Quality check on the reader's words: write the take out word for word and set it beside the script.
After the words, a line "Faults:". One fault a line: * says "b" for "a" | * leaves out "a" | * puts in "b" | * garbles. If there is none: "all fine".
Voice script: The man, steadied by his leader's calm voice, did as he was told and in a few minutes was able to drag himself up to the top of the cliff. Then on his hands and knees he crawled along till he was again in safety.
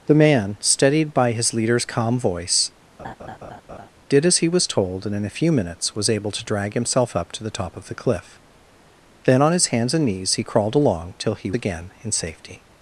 The man, steadied by his leader's calm voice, did as he was told and in a few minutes was able to drag himself up to the top of the cliff. Then on his hands and knees he crawled along till he again in safety.
Faults:
* leaves out "was"